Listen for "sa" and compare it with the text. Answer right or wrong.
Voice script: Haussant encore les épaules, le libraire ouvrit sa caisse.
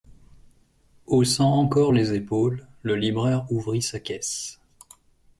right